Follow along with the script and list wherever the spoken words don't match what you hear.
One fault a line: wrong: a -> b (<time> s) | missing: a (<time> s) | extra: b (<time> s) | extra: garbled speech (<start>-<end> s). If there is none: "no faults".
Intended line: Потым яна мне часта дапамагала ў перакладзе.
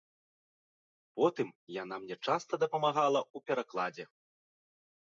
no faults